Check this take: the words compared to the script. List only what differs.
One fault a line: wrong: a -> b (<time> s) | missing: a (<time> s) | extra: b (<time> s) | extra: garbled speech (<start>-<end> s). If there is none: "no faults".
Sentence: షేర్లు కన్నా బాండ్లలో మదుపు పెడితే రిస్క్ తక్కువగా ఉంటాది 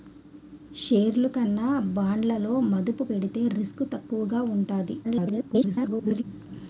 extra: garbled speech (5.0-6.2 s)